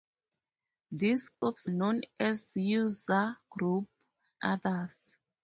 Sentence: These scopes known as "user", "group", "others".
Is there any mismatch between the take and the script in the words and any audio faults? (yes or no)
yes